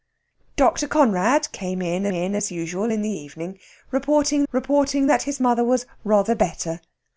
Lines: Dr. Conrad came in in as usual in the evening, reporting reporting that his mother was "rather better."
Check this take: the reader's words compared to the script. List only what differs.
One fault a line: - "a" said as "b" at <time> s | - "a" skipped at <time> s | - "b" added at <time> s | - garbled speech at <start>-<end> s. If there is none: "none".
none